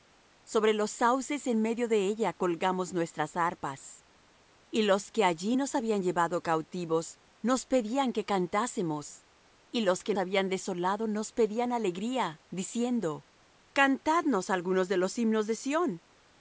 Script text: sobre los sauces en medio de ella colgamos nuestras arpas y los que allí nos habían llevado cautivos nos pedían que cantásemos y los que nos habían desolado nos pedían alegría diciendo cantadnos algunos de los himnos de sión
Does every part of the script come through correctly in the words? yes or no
no